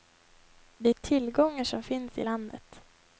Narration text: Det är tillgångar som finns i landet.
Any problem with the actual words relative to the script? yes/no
no